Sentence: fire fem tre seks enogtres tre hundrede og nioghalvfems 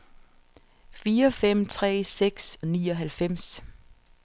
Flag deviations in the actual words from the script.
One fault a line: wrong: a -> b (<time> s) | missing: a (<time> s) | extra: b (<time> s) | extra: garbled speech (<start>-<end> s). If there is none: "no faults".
missing: enogtres tre hundrede (2.6 s)